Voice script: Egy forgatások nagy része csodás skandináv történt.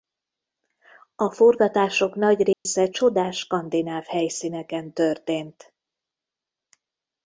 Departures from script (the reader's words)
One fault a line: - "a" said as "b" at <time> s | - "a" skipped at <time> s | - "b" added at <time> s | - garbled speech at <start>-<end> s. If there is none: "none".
- "Egy" said as "A" at 1.1 s
- "helyszíneken" added at 4.0 s